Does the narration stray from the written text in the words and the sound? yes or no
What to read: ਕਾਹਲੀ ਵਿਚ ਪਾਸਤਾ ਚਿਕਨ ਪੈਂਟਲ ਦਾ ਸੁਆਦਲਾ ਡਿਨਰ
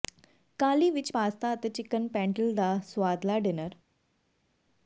yes